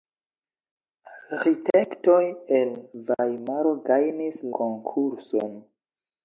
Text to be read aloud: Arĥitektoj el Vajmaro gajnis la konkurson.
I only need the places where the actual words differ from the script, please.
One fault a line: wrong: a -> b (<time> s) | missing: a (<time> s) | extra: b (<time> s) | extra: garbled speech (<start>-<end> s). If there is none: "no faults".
missing: la (4.4 s)